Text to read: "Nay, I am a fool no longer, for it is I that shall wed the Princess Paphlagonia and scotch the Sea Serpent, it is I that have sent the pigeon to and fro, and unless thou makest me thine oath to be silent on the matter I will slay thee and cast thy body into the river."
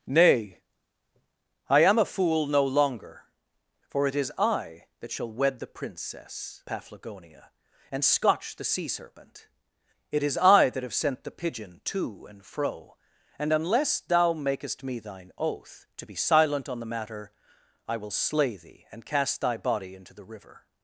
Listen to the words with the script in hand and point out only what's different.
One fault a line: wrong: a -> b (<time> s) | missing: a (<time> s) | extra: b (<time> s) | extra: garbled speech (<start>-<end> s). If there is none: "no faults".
no faults